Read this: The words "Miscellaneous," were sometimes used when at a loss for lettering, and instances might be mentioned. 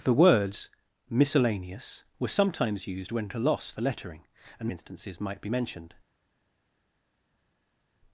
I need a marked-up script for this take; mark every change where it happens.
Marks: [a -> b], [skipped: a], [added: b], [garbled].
The words "Miscellaneous," were sometimes used when at a loss for lettering, and instances might be mentioned.